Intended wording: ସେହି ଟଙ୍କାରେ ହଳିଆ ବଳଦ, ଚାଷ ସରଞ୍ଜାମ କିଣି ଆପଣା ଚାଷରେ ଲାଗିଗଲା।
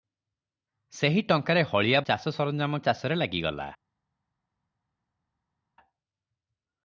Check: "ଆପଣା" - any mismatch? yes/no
yes